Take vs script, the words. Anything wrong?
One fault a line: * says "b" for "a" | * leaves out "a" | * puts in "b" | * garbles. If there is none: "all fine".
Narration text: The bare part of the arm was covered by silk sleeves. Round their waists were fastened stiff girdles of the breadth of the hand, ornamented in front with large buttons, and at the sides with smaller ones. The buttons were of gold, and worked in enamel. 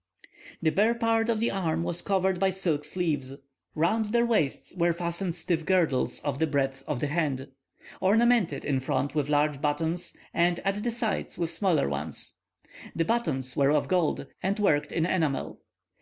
all fine